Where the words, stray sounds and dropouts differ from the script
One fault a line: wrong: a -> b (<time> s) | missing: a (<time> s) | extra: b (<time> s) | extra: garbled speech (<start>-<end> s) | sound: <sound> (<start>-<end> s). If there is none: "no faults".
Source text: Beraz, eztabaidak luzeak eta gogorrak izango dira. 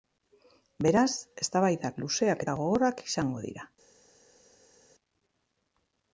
no faults